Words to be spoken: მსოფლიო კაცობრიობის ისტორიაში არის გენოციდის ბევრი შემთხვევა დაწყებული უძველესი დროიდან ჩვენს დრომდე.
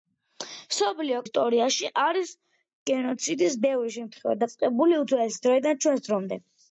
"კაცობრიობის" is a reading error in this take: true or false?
true